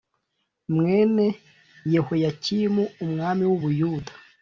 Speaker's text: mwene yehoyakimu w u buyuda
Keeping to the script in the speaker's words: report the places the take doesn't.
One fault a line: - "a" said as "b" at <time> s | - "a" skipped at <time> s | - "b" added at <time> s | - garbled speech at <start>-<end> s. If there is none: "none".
- "umwami" added at 3.0 s